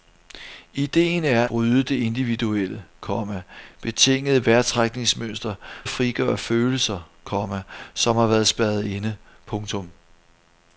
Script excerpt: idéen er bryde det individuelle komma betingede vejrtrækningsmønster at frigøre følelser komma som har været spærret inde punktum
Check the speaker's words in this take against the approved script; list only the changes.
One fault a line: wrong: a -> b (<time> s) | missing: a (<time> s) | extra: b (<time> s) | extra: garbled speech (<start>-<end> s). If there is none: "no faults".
no faults